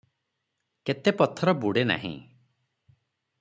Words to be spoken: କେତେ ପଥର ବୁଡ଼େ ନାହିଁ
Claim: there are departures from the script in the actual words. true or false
false